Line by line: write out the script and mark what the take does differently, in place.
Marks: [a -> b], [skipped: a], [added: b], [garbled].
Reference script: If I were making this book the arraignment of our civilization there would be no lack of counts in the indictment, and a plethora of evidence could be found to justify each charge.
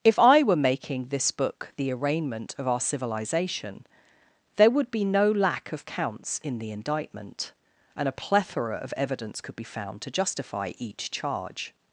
If I were making this book the arraignment of our civilization there would be no lack of counts in the indictment, and a plethora of evidence could be found to justify each charge.